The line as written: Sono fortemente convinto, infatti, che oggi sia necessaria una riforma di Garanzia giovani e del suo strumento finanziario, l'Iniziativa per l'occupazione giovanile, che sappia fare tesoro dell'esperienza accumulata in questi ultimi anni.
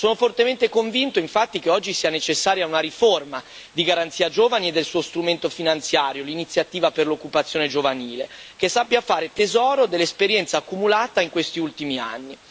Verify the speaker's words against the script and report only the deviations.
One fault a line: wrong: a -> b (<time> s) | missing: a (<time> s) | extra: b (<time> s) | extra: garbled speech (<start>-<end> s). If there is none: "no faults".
no faults